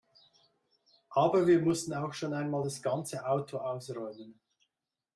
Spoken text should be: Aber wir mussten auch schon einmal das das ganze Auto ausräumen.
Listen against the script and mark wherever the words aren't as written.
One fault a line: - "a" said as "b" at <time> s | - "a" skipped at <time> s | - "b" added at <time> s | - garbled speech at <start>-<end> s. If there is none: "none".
- "das" skipped at 2.8 s